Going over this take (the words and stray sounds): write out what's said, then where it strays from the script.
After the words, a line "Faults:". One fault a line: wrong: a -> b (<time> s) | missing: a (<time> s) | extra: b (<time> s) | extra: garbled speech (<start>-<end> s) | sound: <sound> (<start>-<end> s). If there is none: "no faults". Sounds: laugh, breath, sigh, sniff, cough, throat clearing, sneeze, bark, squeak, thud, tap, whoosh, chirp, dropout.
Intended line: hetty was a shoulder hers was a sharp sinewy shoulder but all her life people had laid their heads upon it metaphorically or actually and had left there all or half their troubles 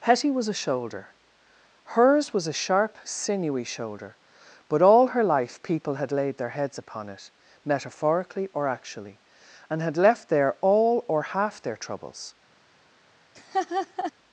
hetty was a shoulder hers was a sharp sinewy shoulder but all her life people had laid their heads upon it metaphorically or actually and had left there all or half their troubles
Faults:
sound: laugh (13.3-14.1 s)